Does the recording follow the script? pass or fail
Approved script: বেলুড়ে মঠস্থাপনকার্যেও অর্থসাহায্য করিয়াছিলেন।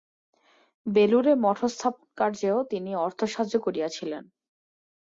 fail